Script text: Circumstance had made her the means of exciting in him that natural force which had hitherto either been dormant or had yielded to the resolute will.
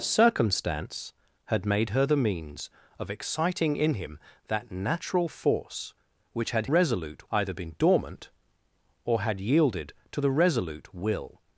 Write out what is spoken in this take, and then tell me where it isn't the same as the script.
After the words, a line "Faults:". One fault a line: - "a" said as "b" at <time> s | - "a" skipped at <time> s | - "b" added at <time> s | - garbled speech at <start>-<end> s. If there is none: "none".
Circumstance had made her the means of exciting in him that natural force which had resolute either been dormant or had yielded to the resolute will.
Faults:
- "hitherto" said as "resolute" at 6.6 s